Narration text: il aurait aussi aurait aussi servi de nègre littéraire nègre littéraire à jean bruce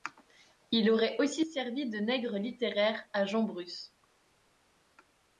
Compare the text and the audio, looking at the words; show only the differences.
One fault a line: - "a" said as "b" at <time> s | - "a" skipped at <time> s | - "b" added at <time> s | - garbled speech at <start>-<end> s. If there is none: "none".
- "aurait aussi" skipped at 1.4 s
- "nègre littéraire" skipped at 3.1 s